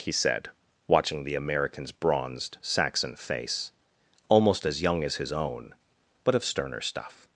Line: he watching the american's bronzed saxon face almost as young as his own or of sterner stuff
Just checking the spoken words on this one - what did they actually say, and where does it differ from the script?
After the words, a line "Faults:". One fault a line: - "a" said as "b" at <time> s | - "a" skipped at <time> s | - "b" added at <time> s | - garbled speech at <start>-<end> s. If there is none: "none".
he said watching the american's bronzed saxon face almost as young as his own but of sterner stuff
Faults:
- "said" added at 0.1 s
- "or" said as "but" at 6.2 s